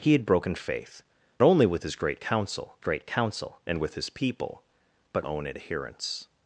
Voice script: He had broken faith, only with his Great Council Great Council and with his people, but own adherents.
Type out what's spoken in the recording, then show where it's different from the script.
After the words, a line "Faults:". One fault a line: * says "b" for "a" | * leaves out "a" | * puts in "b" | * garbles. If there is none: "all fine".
He had broken faith, only with his Great Council Great Council and with his people, but own adherents.
Faults:
all fine